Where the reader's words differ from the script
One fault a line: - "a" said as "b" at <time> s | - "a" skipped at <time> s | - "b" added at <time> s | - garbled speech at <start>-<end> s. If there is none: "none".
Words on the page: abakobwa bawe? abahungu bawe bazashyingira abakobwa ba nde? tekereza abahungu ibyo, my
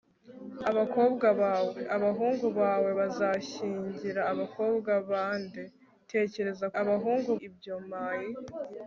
none